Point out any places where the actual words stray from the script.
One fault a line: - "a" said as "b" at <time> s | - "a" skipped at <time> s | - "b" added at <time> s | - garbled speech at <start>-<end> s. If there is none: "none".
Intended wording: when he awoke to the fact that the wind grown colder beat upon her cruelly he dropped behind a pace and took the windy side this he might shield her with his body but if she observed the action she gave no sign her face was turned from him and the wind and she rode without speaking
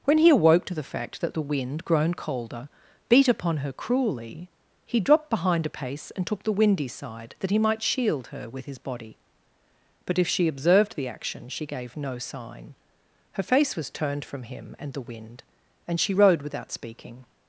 - "this" said as "that" at 7.4 s